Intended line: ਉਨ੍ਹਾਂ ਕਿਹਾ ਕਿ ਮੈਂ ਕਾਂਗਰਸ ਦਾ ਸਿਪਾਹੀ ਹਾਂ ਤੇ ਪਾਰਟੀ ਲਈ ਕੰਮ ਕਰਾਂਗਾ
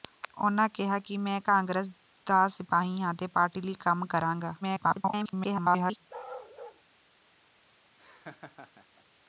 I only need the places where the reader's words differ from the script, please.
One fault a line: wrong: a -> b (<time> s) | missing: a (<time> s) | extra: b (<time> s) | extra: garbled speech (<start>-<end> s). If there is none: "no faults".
extra: garbled speech (4.6-6.0 s)